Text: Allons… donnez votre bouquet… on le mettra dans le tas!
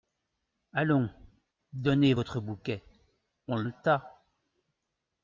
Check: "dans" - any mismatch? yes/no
yes